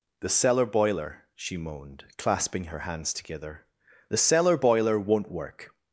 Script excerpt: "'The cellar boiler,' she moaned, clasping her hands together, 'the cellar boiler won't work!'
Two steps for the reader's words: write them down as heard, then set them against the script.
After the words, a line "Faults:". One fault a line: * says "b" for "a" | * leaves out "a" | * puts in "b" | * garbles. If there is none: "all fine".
"'The cellar boiler,' she moaned, clasping her hands together, 'the cellar boiler won't work!'
Faults:
all fine